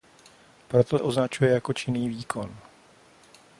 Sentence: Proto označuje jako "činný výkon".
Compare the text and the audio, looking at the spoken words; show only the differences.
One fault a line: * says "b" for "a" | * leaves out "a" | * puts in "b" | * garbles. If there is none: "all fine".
all fine